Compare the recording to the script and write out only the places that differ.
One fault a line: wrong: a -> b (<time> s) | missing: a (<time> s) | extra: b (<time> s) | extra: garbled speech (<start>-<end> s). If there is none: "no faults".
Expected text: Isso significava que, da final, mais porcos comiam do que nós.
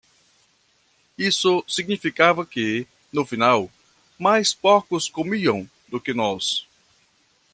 wrong: da -> no (3.1 s)